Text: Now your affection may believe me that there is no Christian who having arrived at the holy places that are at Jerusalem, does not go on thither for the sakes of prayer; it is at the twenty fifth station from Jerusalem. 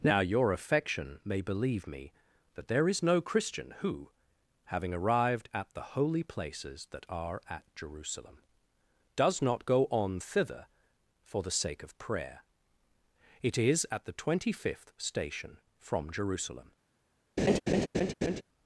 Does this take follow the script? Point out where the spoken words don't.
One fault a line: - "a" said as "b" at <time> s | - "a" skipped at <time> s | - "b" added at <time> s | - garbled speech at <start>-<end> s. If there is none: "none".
- "sakes" said as "sake" at 11.5 s